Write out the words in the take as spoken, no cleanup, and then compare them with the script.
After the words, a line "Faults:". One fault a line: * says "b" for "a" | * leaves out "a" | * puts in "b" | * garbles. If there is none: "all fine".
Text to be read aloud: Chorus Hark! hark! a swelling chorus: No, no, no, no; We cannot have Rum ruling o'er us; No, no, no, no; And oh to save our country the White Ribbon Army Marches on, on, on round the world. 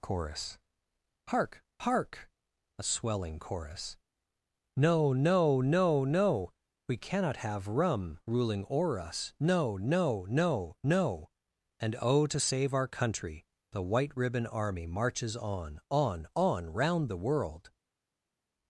Chorus Hark! hark! a swelling chorus: No, no, no, no; We cannot have Rum ruling o'er us; No, no, no, no; And oh to save our country the White Ribbon Army Marches on, on, on round the world.
Faults:
all fine